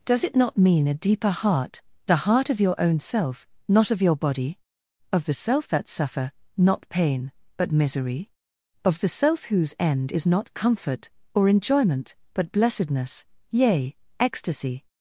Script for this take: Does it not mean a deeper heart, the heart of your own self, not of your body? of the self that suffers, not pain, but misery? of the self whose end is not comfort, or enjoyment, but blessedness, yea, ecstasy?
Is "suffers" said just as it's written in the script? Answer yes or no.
no